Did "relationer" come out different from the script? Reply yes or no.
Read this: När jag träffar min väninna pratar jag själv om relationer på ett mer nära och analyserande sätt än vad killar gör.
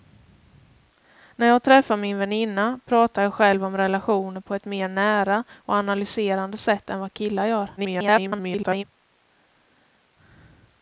no